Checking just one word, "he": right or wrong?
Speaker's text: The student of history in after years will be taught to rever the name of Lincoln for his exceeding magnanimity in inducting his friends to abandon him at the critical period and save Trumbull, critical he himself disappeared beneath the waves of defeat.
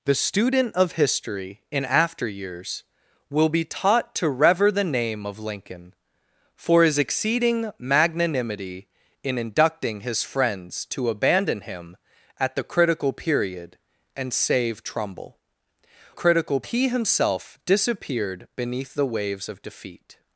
right